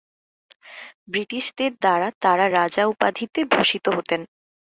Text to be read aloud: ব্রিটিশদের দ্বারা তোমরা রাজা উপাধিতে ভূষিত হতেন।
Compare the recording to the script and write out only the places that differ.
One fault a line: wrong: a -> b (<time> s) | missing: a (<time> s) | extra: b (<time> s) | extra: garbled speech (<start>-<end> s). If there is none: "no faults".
wrong: তোমরা -> তারা (2.2 s)